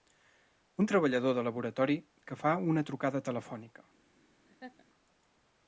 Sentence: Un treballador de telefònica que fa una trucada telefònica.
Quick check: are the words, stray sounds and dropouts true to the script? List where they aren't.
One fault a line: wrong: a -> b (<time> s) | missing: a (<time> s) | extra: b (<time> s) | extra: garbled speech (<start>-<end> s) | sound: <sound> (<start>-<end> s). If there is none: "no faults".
wrong: telefònica -> laboratori (1.5 s)
sound: laugh (4.5-4.8 s)